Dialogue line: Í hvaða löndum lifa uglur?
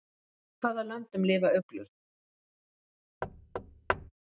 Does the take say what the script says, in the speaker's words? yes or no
yes